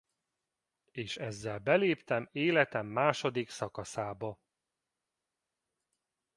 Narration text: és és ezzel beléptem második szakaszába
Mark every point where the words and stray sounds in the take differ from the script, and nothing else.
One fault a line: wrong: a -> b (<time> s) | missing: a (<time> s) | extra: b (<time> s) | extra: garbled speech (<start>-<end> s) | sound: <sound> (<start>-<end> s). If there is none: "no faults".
missing: és (1.2 s)
extra: életem (2.3 s)